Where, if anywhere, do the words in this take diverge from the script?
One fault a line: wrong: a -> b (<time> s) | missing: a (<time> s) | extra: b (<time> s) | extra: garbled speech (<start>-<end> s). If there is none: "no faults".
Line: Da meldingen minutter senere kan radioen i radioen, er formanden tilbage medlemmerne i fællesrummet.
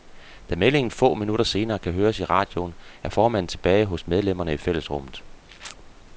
extra: få (0.9 s)
wrong: radioen -> høres (1.9 s)
extra: hos (3.9 s)